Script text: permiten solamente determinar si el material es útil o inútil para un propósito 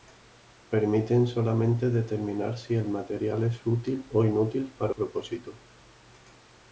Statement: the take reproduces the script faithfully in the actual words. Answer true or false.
false